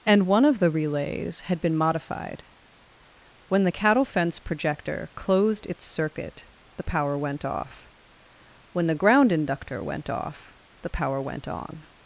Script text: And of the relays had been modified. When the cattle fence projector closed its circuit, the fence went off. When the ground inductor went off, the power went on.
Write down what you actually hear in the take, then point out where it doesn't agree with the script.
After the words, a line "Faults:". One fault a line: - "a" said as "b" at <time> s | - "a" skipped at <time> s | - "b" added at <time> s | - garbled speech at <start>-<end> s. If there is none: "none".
And one of the relays had been modified. When the cattle fence projector closed its circuit, the power went off. When the ground inductor went off, the power went on.
Faults:
- "one" added at 0.2 s
- "fence" said as "power" at 6.8 s